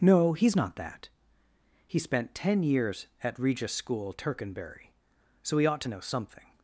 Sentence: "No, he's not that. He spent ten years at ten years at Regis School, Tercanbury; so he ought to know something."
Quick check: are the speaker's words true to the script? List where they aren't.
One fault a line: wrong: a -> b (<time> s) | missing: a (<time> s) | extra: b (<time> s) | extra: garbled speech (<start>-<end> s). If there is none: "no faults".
missing: ten years at (3.4 s)